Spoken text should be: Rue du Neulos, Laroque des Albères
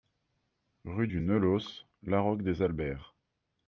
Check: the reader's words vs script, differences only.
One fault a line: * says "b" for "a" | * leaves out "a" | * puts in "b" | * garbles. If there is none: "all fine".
all fine